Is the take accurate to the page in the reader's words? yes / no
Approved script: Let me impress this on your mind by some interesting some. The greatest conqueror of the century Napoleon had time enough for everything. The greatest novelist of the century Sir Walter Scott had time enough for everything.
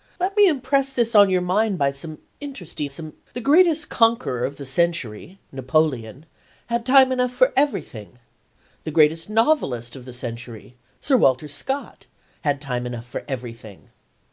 yes